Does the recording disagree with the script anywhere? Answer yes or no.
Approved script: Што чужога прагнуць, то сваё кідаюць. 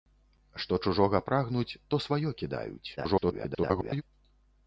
yes